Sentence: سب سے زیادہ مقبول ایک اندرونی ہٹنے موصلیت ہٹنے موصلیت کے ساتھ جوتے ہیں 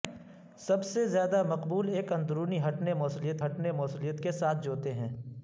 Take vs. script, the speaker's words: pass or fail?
pass